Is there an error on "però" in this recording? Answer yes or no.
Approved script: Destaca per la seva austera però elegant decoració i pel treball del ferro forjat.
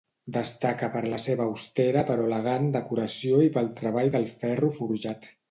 no